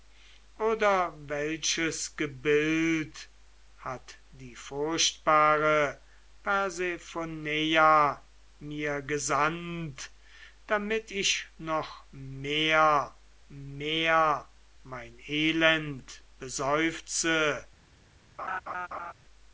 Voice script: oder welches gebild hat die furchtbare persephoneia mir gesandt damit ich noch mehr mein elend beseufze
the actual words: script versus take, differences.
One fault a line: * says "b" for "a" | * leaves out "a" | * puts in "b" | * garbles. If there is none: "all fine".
* puts in "mehr"